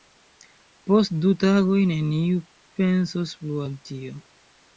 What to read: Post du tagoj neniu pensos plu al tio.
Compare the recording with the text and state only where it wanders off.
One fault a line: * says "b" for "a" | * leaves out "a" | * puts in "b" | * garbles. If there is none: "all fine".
all fine